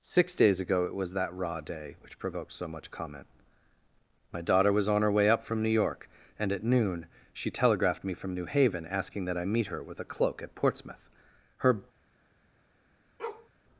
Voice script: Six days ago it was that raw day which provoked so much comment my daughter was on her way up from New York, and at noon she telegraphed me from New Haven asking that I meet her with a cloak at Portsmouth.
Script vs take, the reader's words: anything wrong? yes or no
yes